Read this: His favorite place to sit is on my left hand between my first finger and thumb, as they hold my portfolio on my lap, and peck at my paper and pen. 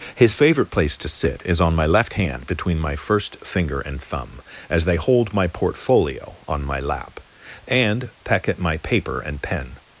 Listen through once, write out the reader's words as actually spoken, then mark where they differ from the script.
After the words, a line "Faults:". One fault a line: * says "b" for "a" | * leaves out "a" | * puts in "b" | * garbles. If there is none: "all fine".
His favorite place to sit is on my left hand between my first finger and thumb, as they hold my portfolio on my lap, and peck at my paper and pen.
Faults:
all fine